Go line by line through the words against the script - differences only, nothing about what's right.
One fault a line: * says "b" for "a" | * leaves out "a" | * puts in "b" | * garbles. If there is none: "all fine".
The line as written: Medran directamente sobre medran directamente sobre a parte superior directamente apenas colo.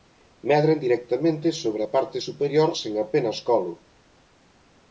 * leaves out "medran directamente sobre"
* says "sen" for "directamente"